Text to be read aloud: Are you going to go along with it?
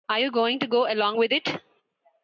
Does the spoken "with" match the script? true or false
true